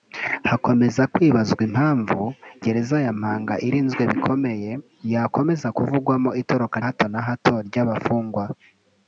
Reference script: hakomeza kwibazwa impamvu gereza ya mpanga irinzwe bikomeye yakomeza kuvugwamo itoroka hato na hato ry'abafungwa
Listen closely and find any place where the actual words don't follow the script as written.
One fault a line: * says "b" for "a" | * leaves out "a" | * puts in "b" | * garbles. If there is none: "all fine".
all fine